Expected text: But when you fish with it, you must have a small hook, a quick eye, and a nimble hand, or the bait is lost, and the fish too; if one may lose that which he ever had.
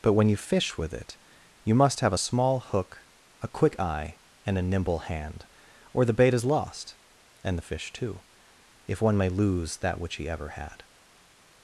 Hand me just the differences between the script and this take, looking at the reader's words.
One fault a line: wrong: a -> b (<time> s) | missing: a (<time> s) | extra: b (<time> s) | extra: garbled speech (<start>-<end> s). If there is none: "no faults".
no faults